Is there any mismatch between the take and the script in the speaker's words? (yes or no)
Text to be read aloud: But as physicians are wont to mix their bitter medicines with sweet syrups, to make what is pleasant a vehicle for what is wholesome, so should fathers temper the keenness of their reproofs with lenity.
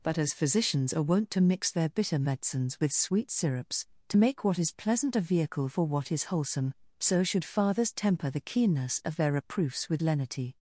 no